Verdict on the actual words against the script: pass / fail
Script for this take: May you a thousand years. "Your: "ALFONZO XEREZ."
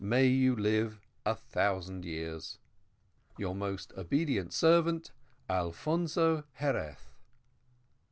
fail